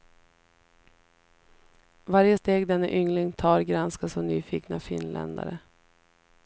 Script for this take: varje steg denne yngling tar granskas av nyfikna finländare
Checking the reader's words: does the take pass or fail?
pass